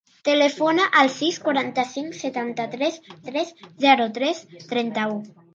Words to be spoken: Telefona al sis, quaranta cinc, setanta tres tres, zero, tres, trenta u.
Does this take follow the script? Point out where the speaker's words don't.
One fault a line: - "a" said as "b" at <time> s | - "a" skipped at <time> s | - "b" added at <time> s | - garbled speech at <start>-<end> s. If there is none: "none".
none